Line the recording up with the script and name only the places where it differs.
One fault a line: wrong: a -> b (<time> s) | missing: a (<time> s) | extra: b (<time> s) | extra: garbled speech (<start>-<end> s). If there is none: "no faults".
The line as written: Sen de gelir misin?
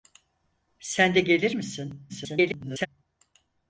extra: garbled speech (2.1-2.9 s)